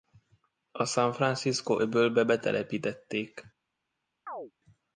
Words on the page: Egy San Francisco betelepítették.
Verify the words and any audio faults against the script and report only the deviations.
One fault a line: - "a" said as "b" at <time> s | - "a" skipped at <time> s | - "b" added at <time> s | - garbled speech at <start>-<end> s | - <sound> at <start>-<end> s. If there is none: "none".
- "Egy" said as "A" at 0.7 s
- "öbölbe" added at 1.8 s
- chirp at 4.3-4.5 s